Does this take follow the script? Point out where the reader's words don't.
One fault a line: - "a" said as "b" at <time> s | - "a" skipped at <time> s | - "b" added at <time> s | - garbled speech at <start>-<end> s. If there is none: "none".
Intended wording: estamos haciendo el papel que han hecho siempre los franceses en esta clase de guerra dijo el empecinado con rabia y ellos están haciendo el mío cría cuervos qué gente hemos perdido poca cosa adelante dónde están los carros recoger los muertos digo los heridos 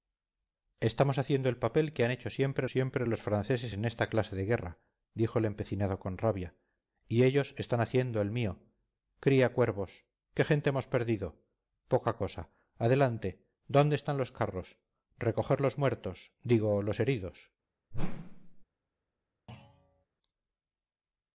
- "siempre" added at 2.7 s